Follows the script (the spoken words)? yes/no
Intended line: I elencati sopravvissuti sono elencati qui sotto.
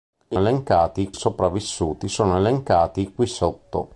yes